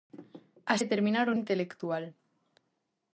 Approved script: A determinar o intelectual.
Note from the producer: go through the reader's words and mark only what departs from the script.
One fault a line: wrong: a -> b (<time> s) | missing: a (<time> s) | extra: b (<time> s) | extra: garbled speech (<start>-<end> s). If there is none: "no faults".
no faults